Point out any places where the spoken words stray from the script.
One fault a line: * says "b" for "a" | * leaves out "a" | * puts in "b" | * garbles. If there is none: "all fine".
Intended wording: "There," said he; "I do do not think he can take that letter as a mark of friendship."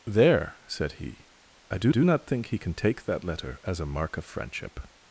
all fine